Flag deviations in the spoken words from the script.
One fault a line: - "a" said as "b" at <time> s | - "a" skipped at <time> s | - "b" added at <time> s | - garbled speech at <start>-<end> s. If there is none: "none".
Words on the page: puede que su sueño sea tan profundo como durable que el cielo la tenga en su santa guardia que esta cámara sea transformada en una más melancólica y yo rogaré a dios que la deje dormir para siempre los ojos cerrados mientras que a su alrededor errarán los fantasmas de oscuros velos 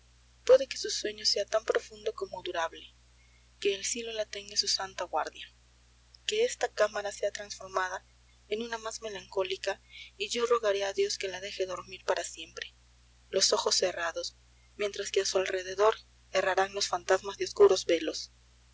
none